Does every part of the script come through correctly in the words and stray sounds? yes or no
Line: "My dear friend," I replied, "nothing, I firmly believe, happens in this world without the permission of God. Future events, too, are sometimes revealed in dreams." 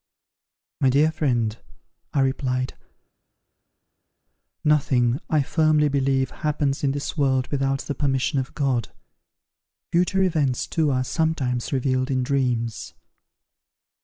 yes